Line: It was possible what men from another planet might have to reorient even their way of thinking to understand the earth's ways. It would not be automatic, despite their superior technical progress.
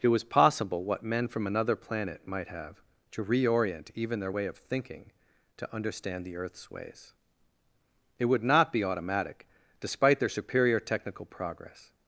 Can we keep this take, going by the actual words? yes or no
yes